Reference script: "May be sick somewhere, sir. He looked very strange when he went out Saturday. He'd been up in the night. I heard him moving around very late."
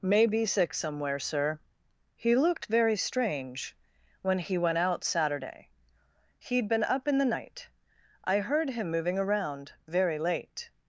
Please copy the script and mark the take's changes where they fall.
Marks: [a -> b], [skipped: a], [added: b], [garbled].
"May be sick somewhere, sir. He looked very strange when he went out Saturday. He'd been up in the night. I heard him moving around very late."